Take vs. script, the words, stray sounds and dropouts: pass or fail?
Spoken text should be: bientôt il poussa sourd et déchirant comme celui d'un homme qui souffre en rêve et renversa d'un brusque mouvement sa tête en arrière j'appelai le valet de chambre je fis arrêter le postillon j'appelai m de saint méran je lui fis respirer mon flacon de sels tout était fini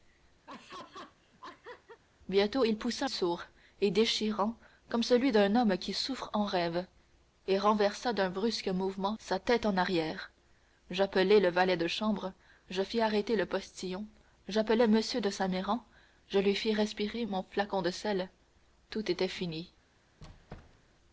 fail